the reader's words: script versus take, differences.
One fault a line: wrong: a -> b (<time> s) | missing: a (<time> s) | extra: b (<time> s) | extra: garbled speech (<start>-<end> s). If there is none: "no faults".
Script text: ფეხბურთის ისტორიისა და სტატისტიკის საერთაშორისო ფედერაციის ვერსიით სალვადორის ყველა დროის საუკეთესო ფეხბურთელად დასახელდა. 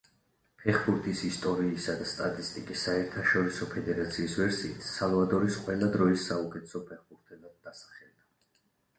no faults